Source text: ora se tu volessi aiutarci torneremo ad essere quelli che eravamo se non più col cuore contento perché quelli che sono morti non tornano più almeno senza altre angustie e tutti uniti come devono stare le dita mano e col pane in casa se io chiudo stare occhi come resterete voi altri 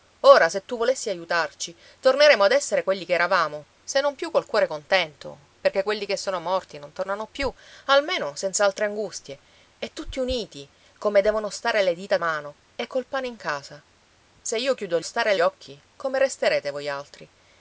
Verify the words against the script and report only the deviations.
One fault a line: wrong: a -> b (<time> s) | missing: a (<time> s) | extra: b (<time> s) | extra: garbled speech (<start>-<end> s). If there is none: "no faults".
no faults